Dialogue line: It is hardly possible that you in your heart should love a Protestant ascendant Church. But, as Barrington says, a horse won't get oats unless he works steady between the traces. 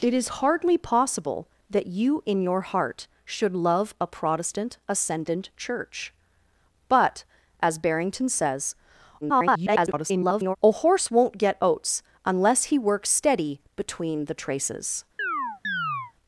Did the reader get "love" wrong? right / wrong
right